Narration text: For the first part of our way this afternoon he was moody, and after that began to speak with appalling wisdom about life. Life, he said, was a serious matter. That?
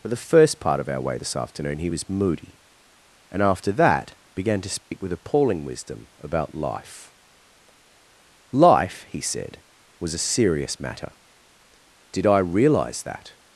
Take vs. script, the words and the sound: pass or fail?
fail